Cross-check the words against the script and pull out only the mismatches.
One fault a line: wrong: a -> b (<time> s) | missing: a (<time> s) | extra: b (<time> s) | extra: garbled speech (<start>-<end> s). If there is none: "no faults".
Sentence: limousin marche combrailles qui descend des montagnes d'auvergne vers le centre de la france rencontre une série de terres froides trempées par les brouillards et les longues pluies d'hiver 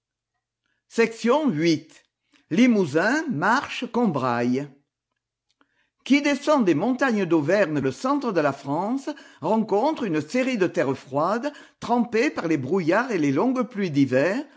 missing: vers (7.8 s)